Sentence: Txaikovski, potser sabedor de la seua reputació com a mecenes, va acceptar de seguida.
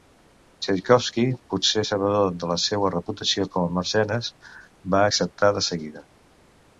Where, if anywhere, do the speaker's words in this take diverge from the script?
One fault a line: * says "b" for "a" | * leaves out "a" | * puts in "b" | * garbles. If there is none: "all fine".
all fine